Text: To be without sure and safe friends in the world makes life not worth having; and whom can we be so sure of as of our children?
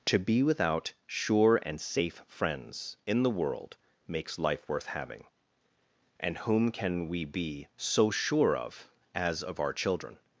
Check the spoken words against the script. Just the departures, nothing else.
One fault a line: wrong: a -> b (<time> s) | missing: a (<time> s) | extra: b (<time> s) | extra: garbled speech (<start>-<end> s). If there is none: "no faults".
missing: not (4.7 s)